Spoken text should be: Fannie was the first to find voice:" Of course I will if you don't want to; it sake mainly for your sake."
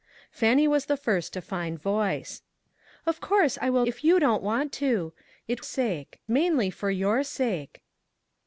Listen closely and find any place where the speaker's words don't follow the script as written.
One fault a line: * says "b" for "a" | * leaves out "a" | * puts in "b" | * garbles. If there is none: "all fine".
all fine